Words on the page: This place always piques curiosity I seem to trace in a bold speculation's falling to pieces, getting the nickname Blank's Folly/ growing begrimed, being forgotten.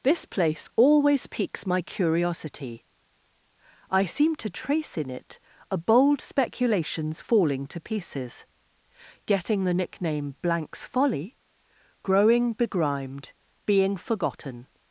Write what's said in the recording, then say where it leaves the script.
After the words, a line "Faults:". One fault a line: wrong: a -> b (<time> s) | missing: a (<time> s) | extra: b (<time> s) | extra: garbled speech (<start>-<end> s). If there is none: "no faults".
This place always piques my curiosity I seem to trace in it a bold speculation's falling to pieces, getting the nickname Blank's Folly/ growing begrimed, being forgotten.
Faults:
extra: my (1.7 s)
extra: it (5.1 s)